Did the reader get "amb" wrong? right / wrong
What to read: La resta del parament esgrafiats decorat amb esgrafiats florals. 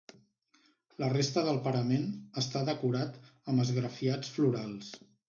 right